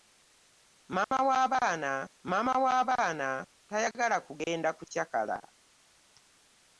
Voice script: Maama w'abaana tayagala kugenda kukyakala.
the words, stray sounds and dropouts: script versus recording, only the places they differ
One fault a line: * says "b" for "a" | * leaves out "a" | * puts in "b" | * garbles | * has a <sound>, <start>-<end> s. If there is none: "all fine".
* has a dropout, 1.0-1.1 s
* puts in "maama w'abaana"